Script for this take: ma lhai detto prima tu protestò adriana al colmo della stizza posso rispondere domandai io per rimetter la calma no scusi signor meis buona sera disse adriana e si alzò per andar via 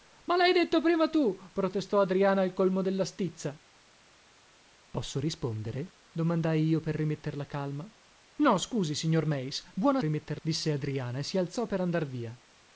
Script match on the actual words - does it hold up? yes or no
no